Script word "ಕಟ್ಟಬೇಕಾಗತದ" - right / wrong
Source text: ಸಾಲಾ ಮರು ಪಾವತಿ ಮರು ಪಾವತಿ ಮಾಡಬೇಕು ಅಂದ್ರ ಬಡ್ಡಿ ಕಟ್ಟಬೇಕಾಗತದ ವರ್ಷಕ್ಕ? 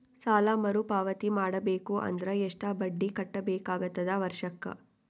right